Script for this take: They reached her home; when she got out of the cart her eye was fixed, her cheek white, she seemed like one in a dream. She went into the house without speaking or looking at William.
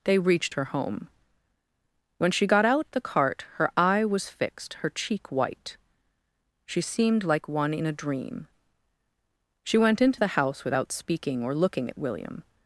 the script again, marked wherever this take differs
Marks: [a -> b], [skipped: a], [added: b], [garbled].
They reached her home; when she got out [skipped: of] the cart her eye was fixed, her cheek white, she seemed like one in a dream. She went into the house without speaking or looking at William.